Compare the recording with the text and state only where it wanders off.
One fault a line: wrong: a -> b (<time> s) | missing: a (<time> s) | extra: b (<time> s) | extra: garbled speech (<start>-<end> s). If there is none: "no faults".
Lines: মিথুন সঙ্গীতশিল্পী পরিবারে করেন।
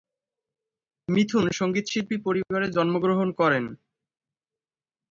extra: জন্মগ্রহণ (2.8 s)